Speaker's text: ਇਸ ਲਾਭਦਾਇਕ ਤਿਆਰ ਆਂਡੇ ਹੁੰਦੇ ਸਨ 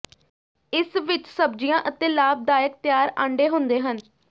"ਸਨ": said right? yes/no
no